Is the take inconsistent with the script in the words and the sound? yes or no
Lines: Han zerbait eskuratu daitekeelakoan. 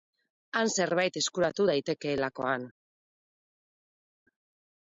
no